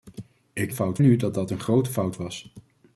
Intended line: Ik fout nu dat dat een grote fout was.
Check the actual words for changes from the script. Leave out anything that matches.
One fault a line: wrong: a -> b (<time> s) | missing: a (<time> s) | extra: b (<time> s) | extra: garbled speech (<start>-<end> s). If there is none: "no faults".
no faults